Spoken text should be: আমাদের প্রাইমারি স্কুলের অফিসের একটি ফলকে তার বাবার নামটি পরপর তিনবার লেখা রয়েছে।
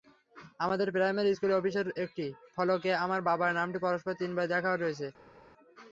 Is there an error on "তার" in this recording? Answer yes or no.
yes